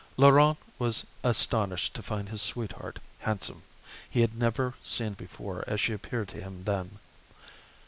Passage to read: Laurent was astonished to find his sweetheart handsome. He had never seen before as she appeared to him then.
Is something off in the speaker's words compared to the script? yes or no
no